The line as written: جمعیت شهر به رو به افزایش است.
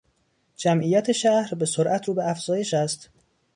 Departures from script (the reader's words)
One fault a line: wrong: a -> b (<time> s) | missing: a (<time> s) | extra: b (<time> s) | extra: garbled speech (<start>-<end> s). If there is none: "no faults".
extra: سرعت (1.6 s)